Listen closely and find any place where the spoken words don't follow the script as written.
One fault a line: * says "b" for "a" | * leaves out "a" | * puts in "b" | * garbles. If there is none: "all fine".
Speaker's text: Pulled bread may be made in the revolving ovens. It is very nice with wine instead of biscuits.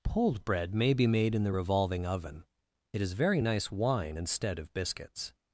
* says "oven" for "ovens"
* leaves out "with"